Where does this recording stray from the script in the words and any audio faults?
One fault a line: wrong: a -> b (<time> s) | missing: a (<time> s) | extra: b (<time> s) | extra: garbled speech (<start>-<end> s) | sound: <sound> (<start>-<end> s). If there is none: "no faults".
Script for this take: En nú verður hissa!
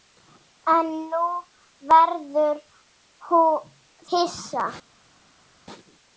no faults